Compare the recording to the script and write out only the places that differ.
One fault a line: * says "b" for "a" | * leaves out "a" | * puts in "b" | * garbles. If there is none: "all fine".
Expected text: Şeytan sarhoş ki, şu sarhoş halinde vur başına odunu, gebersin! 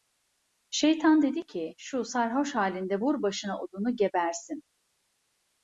* says "dedi" for "sarhoş"